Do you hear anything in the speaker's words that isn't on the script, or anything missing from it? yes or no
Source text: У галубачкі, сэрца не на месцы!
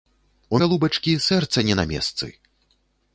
no